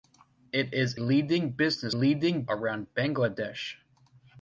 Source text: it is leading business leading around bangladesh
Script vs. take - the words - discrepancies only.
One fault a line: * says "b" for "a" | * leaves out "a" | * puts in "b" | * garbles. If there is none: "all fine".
all fine